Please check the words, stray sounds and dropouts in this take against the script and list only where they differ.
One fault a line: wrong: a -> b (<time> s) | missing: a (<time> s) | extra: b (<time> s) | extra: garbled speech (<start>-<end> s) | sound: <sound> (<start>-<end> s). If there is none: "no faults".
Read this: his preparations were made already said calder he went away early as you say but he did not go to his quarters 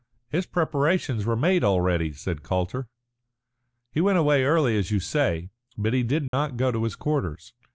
sound: dropout (6.3-6.3 s)